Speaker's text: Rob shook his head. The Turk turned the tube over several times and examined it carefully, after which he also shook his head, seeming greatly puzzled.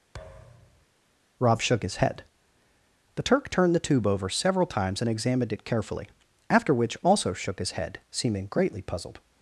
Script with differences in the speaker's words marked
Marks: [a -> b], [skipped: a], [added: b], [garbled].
Rob shook his head. The Turk turned the tube over several times and examined it carefully, after which [skipped: he] also shook his head, seeming greatly puzzled.